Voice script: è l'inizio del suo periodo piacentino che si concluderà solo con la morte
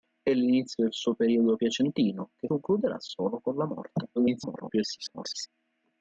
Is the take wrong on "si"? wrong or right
wrong